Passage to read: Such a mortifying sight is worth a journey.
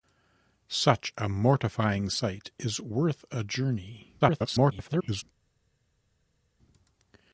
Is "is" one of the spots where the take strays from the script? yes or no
no